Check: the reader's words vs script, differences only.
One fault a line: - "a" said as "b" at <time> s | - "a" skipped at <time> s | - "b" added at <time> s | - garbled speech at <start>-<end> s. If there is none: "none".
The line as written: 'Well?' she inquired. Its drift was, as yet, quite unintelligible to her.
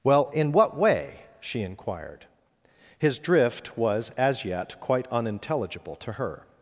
- "in what way" added at 0.3 s
- "Its" said as "His" at 3.0 s